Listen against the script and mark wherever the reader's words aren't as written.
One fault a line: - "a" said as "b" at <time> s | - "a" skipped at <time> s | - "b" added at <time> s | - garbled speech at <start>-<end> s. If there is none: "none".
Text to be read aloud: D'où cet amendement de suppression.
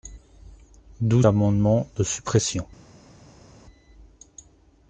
- "cet" skipped at 1.2 s